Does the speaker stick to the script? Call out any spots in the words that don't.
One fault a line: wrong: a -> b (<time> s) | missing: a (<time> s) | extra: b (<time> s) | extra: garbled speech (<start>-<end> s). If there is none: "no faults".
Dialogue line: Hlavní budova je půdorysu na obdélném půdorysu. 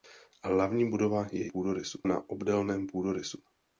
no faults